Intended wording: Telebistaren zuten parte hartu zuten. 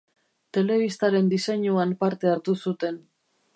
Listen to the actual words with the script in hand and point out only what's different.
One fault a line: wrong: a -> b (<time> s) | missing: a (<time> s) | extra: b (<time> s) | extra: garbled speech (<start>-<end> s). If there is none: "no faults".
wrong: zuten -> diseinuan (1.3 s)